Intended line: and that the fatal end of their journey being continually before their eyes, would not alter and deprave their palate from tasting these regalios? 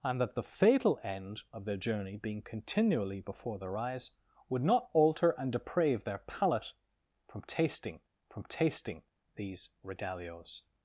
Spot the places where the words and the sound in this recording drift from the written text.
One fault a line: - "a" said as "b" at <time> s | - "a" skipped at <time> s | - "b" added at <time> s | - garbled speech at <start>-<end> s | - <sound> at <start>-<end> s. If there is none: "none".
- "from tasting" added at 8.3 s